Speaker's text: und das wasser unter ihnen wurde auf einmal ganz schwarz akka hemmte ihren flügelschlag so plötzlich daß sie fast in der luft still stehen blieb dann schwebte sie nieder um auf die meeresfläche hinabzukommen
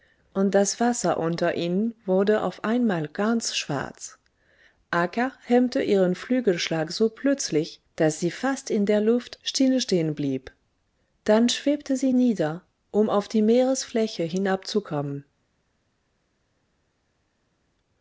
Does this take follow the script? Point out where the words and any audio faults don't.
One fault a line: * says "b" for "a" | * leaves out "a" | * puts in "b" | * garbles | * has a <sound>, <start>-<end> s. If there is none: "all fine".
all fine